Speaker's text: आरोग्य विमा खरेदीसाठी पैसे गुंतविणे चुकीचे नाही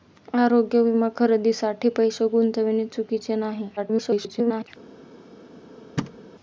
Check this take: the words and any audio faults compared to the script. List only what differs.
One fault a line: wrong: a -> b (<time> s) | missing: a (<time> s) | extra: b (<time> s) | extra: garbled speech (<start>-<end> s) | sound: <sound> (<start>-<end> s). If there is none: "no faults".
extra: garbled speech (3.8-4.7 s)
sound: thud (6.0-6.2 s)